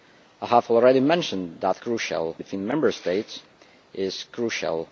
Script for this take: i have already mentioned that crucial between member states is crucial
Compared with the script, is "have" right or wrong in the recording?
right